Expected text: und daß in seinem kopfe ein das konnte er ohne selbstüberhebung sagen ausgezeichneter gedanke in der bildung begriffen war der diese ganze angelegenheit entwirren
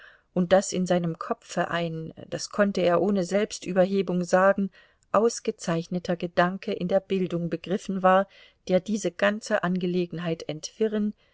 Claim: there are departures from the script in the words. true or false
false